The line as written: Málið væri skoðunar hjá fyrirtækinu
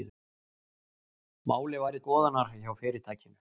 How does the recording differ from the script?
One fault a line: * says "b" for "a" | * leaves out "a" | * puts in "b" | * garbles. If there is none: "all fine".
all fine